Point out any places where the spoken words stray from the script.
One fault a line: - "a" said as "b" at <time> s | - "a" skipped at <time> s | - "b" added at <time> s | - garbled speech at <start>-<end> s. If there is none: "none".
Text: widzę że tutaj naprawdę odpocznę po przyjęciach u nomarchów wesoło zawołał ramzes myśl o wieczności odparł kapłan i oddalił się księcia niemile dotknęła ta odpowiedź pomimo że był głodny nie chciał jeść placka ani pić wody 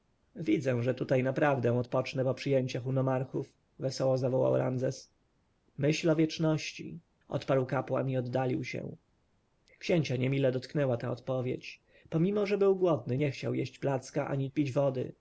none